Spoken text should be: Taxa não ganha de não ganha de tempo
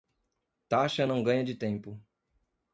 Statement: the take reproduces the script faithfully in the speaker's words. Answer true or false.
false